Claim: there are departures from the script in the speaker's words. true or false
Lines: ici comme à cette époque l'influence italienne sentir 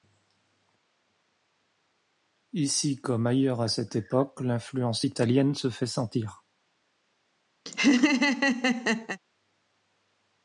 true